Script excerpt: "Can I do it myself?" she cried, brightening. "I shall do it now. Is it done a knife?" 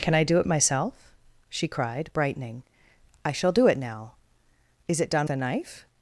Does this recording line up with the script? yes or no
yes